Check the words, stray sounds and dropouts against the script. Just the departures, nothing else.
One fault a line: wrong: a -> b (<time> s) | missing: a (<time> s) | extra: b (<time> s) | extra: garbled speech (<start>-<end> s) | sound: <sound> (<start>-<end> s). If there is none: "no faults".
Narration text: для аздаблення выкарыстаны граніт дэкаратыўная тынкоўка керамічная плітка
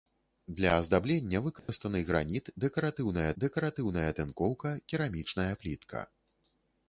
sound: dropout (1.6-1.7 s)
extra: дэкаратыўная (3.4 s)